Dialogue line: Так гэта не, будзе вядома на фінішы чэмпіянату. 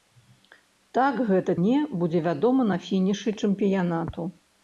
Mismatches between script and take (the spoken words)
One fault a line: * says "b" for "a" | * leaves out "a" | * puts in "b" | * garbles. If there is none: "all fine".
all fine